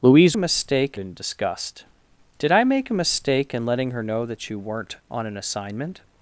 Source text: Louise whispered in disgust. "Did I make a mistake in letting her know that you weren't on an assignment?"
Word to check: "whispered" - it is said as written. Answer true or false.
false